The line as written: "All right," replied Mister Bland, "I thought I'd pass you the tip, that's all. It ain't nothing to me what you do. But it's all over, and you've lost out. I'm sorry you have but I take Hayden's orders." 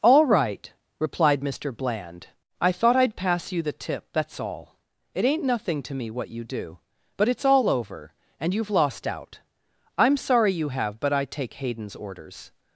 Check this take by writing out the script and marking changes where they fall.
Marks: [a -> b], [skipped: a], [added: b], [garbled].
"All right," replied Mister Bland, "I thought I'd pass you the tip, that's all. It ain't nothing to me what you do. But it's all over, and you've lost out. I'm sorry you have but I take Hayden's orders."